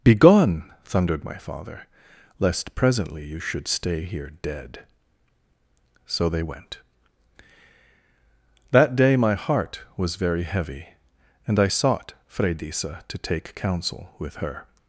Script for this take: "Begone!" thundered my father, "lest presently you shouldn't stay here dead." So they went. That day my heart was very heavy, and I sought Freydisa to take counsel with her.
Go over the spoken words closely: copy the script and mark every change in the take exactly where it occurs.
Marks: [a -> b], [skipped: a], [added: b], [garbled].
"Begone!" thundered my father, "lest presently you [shouldn't -> should] stay here dead." So they went. That day my heart was very heavy, and I sought Freydisa to take counsel with her.